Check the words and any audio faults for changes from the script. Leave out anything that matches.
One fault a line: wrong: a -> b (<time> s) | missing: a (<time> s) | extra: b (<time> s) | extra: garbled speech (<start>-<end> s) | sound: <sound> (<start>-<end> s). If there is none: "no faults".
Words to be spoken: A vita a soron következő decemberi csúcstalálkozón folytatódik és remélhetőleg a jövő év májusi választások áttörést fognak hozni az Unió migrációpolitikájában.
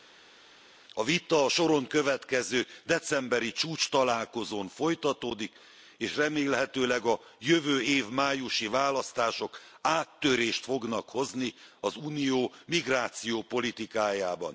no faults